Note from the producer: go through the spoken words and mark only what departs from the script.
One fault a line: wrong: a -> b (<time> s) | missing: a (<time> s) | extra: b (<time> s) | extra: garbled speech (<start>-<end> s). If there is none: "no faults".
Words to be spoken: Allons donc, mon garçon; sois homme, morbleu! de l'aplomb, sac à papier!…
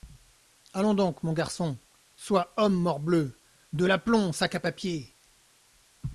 no faults